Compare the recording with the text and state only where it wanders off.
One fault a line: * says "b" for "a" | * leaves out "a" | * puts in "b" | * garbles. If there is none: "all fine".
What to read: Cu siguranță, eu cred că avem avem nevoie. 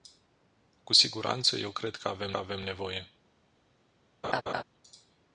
all fine